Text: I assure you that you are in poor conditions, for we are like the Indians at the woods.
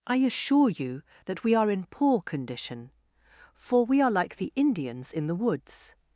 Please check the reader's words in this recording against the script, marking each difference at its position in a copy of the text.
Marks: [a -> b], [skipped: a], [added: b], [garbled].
I assure you that [you -> we] are in poor [conditions, -> condition] for we are like the Indians [at -> in] the woods.